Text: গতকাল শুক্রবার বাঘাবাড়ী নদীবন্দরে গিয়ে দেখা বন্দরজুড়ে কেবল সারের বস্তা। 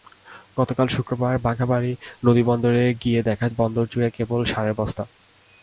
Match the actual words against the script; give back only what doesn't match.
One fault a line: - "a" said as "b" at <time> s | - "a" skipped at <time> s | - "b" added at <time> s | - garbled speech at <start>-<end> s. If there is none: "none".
none